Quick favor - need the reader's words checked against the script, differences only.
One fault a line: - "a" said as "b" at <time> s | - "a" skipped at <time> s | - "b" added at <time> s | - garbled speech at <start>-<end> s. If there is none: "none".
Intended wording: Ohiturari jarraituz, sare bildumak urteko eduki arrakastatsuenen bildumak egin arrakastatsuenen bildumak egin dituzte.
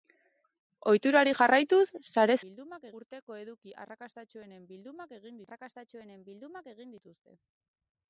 none